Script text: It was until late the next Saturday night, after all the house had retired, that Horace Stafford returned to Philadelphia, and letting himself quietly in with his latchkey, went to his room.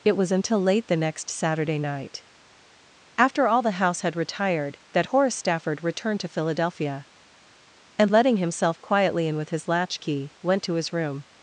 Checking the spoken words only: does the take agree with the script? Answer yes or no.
yes